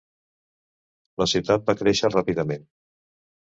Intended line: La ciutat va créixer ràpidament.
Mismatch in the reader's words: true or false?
false